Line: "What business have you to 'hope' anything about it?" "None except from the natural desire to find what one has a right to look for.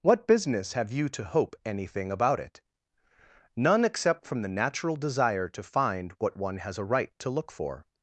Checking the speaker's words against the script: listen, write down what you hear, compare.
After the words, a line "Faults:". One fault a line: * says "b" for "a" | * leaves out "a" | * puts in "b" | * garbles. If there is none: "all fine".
"What business have you to 'hope' anything about it?" "None except from the natural desire to find what one has a right to look for.
Faults:
all fine